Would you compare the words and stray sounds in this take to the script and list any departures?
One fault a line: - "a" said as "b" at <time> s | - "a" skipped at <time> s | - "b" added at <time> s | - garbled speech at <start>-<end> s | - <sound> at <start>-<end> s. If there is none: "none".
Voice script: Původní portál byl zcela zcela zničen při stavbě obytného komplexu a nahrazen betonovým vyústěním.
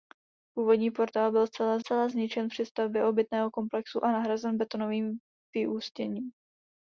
none